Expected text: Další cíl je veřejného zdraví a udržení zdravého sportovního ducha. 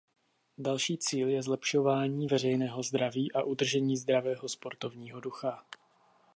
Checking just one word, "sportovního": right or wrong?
right